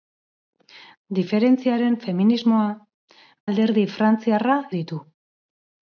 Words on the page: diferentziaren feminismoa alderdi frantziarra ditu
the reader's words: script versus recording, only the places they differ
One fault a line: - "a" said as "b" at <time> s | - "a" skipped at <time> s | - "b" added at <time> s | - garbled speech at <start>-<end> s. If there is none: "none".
none